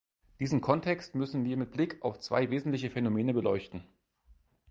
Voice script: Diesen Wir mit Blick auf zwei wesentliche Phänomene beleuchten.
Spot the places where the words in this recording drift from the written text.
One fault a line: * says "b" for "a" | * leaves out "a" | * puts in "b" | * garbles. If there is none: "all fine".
* puts in "Kontext müssen"